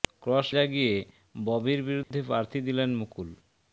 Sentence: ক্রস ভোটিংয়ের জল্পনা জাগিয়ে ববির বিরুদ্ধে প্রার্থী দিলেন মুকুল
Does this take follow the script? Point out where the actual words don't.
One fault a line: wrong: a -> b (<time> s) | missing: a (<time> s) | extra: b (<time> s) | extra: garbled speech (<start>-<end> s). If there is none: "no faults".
missing: ভোটিংয়ের জল্পনা (0.5 s)